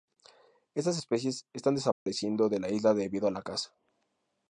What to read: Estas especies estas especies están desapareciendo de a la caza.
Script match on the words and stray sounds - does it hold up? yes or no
no